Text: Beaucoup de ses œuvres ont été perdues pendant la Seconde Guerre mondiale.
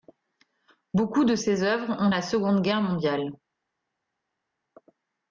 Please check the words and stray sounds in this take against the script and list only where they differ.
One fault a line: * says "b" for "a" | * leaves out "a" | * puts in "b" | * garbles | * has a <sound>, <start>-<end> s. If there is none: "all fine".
* leaves out "été perdues pendant"